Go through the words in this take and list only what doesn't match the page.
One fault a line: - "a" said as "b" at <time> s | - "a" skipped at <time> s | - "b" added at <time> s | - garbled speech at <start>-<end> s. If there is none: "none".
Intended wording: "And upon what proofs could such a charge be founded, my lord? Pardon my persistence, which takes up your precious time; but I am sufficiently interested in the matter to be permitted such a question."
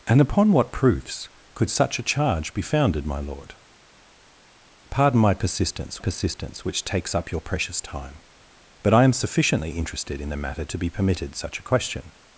- "persistence" added at 6.0 s